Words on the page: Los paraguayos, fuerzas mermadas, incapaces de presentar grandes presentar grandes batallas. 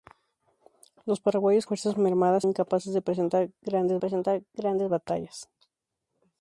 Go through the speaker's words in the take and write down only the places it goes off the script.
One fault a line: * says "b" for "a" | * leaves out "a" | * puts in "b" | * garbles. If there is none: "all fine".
all fine